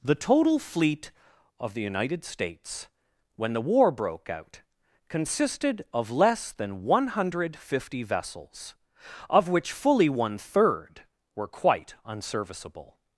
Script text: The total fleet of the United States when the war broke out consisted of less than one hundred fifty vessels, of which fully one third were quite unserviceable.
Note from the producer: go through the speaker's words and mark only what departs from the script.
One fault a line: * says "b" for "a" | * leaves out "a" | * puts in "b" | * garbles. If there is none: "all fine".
all fine